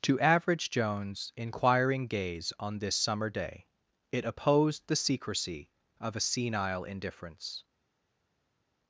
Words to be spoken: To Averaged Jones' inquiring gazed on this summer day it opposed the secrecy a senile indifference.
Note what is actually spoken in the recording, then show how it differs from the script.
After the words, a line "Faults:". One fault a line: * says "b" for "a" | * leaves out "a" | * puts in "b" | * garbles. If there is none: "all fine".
To Average Jones' inquiring gaze on this summer day it opposed the secrecy of a senile indifference.
Faults:
* says "Average" for "Averaged"
* says "gaze" for "gazed"
* puts in "of"